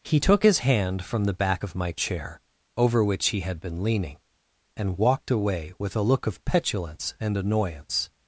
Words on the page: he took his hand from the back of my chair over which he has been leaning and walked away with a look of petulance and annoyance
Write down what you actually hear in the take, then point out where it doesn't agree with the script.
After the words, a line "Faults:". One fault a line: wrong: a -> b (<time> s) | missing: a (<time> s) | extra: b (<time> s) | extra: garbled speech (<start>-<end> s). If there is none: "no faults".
he took his hand from the back of my chair over which he had been leaning and walked away with a look of petulance and annoyance
Faults:
wrong: has -> had (3.4 s)